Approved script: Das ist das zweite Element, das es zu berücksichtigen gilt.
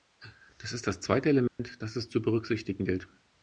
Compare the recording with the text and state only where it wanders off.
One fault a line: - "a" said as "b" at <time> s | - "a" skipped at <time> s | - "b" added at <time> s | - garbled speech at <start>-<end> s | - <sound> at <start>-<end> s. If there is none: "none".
- dropout at 1.5-1.6 s